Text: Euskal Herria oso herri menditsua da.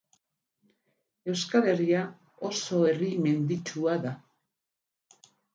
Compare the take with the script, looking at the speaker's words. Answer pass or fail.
pass